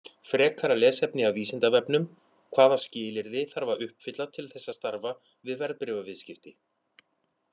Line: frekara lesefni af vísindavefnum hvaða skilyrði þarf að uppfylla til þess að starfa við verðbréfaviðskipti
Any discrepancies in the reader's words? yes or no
no